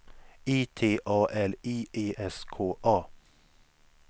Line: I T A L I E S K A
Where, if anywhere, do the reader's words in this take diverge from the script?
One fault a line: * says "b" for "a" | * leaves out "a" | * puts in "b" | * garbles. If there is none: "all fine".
all fine